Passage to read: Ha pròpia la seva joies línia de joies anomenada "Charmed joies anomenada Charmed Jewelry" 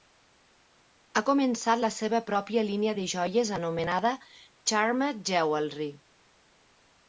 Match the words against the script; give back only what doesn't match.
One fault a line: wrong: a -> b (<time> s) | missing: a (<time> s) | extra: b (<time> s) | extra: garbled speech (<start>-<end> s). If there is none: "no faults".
wrong: pròpia -> començat (1.3 s)
wrong: joies -> pròpia (2.3 s)
missing: joies anomenada Charmed (5.3 s)